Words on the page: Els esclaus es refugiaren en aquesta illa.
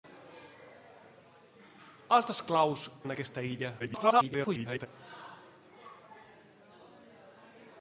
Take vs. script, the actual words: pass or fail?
fail